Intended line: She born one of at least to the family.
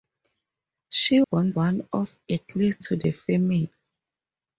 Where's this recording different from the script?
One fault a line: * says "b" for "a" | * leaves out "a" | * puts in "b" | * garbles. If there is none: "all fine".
all fine